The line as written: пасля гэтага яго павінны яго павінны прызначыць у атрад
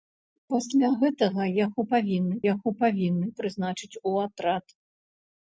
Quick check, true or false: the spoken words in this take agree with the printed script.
true